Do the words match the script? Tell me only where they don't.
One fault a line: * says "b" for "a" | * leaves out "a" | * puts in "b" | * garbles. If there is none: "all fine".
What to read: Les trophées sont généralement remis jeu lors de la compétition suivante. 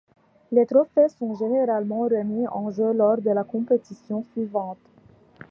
* puts in "en"